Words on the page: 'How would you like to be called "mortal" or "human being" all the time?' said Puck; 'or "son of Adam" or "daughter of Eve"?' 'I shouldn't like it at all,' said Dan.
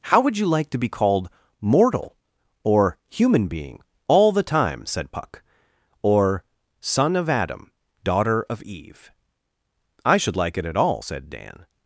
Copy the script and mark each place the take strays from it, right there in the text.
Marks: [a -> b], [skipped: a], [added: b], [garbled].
'How would you like to be called "mortal" or "human being" all the time?' said Puck; 'or "son of Adam" [skipped: or] "daughter of Eve"?' 'I [shouldn't -> should] like it at all,' said Dan.